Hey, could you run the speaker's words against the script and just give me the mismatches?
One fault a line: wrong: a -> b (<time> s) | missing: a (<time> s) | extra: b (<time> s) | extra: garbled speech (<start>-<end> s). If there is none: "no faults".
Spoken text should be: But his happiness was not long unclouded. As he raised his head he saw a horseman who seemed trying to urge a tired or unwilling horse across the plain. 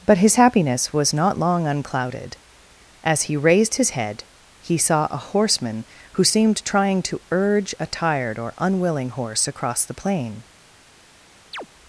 no faults